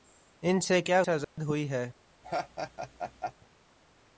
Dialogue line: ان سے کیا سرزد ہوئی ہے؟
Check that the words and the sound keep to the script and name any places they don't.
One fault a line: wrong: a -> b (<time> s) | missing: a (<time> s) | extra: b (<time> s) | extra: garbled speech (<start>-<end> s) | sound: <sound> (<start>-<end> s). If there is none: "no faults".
sound: dropout (1.2-1.4 s)
sound: laugh (2.2-3.3 s)